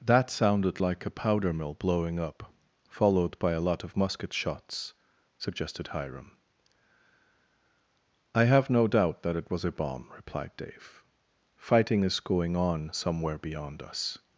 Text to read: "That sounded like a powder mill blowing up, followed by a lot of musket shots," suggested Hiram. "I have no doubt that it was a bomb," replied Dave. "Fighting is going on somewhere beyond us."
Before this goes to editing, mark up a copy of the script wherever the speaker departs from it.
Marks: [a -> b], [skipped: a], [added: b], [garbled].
"That sounded like a powder mill blowing up, followed by a lot of musket shots," suggested Hiram. "I have no doubt that it was a bomb," replied Dave. "Fighting is going on somewhere beyond us."